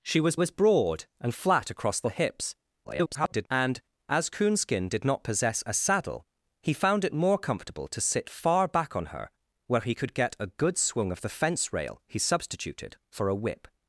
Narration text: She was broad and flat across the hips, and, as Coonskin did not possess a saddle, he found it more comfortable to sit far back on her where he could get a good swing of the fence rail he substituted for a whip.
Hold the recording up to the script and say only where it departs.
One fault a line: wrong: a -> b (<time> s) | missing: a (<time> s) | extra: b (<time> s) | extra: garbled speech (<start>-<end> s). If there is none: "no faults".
extra: was (0.3 s)
extra: garbled speech (2.8-3.5 s)